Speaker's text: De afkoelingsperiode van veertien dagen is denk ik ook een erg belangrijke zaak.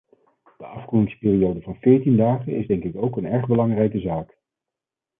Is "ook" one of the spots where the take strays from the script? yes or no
no